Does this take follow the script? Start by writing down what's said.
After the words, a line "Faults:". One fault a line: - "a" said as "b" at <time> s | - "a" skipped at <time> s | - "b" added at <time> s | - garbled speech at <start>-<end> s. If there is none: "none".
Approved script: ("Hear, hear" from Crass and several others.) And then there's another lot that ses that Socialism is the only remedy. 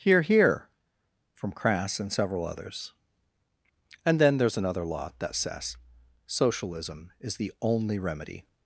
("Hear, hear" from Crass and several others.) And then there's another lot that says Socialism is the only remedy.
Faults:
- "ses that" said as "says" at 5.3 s